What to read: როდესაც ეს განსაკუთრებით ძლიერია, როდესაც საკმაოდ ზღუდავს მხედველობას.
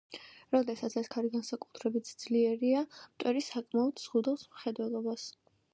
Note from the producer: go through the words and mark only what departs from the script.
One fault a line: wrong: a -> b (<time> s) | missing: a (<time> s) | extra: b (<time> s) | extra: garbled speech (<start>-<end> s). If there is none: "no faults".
extra: ქარი (1.1 s)
wrong: როდესაც -> მტვერი (3.0 s)